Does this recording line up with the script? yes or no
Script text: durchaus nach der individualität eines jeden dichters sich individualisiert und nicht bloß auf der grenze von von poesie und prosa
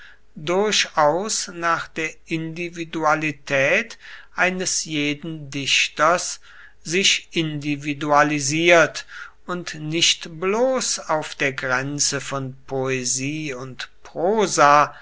no